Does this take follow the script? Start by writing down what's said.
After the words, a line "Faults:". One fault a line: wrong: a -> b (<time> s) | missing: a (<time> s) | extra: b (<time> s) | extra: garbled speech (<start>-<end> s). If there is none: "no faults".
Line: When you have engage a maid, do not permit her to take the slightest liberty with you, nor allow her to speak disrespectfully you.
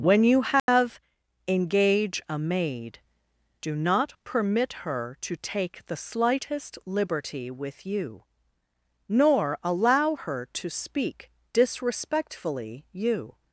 When you have engage a maid, do not permit her to take the slightest liberty with you, nor allow her to speak disrespectfully you.
Faults:
no faults